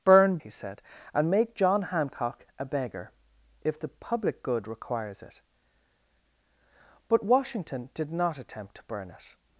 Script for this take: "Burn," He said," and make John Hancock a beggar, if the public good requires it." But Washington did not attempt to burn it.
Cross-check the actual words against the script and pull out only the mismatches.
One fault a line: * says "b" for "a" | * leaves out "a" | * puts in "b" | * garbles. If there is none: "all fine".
all fine